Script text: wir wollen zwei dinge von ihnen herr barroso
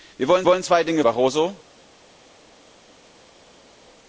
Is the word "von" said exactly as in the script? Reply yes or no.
no